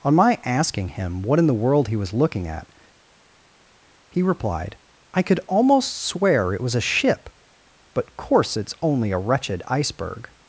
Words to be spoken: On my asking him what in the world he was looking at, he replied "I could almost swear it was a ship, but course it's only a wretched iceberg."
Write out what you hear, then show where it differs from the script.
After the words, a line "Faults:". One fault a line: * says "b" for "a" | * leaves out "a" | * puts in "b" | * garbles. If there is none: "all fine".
On my asking him what in the world he was looking at, he replied "I could almost swear it was a ship, but course it's only a wretched iceberg."
Faults:
all fine